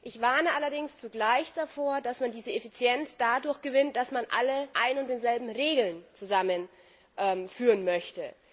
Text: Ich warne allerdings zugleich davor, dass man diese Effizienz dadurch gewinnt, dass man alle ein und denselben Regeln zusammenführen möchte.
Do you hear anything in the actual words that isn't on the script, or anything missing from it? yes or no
no